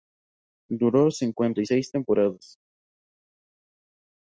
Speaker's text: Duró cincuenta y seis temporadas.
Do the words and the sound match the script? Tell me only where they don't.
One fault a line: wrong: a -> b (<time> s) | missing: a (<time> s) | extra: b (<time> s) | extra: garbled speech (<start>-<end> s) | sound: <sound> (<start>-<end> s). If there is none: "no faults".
no faults